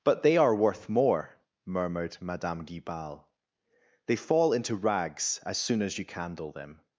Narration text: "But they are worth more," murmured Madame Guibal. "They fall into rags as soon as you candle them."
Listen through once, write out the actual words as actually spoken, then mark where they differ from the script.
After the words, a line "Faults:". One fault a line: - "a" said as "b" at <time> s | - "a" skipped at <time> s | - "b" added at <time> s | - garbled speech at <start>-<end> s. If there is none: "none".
"But they are worth more," murmured Madame Guibal. "They fall into rags as soon as you candle them."
Faults:
none